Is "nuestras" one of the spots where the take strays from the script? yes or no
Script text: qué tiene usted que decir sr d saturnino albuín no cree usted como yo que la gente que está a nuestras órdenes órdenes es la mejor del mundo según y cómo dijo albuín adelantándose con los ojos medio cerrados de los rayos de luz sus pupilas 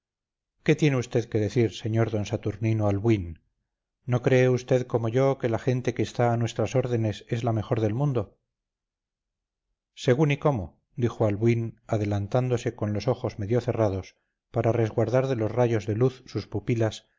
no